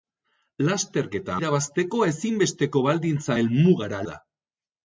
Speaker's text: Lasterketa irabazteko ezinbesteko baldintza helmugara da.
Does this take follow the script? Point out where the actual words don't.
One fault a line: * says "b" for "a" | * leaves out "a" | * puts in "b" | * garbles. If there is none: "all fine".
all fine